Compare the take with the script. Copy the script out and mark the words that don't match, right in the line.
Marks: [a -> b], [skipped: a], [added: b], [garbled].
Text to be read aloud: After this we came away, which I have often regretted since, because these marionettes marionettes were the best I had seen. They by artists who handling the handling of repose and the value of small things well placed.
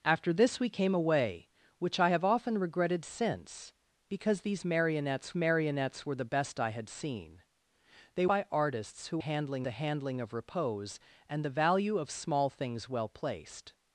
After this we came away, which I have often regretted since, because these marionettes marionettes were the best I had seen. They by artists who handling the handling of repose and the value of small things well placed.